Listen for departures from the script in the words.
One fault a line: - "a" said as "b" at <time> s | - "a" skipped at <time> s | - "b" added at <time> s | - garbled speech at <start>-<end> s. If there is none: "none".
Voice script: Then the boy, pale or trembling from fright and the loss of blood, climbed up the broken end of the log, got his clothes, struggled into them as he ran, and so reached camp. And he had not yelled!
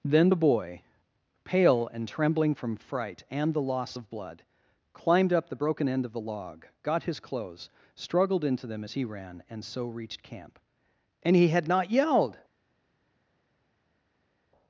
- "or" said as "and" at 1.9 s